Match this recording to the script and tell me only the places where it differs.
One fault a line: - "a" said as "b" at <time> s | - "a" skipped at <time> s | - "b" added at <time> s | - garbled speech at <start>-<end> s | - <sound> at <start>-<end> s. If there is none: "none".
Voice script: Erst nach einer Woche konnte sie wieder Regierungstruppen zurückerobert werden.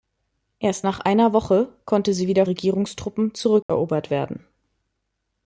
- dropout at 3.6-3.7 s